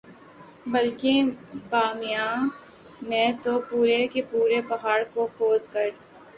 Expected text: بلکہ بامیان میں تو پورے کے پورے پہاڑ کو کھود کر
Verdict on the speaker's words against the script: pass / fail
pass